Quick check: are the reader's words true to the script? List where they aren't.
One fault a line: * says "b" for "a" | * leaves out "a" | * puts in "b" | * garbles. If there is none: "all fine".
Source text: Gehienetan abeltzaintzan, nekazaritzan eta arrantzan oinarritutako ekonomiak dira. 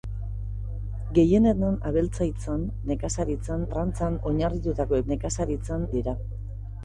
* leaves out "eta"
* says "nekazaritzan" for "ekonomiak"